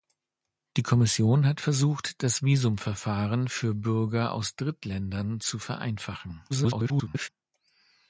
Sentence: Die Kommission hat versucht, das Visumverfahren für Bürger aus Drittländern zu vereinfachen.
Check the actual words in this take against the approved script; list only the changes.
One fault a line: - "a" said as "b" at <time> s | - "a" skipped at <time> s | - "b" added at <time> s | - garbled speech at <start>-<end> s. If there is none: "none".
- garbled speech at 6.5-7.3 s